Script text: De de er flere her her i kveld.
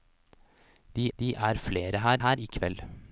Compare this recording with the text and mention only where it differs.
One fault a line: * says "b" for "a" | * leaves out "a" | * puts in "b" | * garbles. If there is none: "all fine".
all fine